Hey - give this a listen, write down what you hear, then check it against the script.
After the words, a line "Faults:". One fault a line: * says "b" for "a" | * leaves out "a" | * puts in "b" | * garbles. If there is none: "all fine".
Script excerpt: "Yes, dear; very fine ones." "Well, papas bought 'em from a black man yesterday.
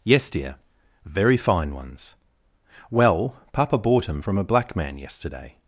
"Yes, dear; very fine ones." "Well, papa bought 'em from a black man yesterday.
Faults:
* says "papa" for "papas"